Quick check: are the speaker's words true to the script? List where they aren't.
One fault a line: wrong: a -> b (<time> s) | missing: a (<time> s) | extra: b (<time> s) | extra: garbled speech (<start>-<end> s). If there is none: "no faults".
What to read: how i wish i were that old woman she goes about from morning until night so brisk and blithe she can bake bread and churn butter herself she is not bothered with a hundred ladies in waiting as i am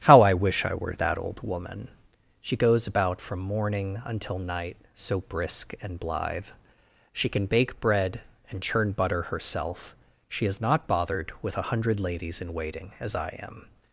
no faults